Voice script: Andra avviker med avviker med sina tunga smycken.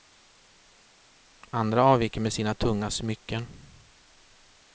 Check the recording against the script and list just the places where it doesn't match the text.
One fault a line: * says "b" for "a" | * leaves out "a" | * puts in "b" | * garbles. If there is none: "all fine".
* leaves out "avviker med"